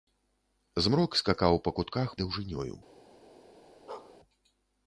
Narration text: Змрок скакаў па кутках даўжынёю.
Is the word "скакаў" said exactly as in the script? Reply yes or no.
yes